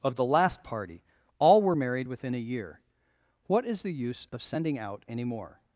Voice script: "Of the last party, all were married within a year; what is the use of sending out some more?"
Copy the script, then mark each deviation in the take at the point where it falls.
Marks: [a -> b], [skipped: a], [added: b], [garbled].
"Of the last party, all were married within a year; what is the use of sending out [some -> any] more?"